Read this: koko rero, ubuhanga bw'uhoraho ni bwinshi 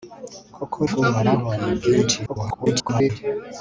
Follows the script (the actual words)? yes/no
no